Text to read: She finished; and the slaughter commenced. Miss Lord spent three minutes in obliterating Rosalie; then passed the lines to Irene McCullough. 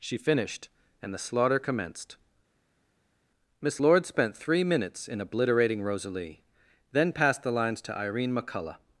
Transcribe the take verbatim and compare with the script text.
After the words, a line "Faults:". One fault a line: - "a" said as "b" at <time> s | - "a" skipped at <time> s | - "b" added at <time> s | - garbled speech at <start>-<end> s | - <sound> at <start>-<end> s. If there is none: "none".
She finished; and the slaughter commenced. Miss Lord spent three minutes in obliterating Rosalie; then passed the lines to Irene McCullough.
Faults:
none